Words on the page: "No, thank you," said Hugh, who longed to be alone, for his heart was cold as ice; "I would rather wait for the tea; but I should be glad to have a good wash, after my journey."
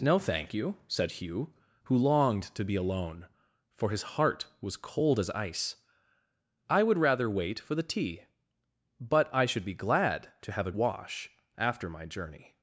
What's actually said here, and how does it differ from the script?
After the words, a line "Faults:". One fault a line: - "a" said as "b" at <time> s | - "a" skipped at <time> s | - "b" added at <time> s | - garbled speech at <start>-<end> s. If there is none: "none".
"No, thank you," said Hugh, who longed to be alone, for his heart was cold as ice; "I would rather wait for the tea; but I should be glad to have a wash, after my journey."
Faults:
- "good" skipped at 10.7 s